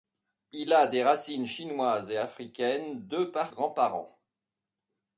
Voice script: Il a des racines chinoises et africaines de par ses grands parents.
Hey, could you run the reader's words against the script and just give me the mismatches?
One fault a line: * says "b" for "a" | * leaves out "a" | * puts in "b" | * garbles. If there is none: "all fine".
* leaves out "ses"